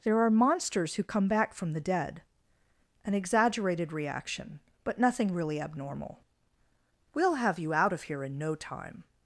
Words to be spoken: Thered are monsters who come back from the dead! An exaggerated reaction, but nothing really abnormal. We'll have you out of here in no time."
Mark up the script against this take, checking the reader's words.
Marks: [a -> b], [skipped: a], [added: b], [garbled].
[Thered -> There] are monsters who come back from the dead! An exaggerated reaction, but nothing really abnormal. We'll have you out of here in no time."